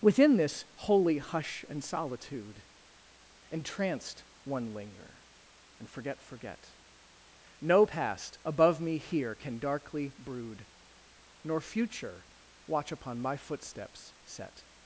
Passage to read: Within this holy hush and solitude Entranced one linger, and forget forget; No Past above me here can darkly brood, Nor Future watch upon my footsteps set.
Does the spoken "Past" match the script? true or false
true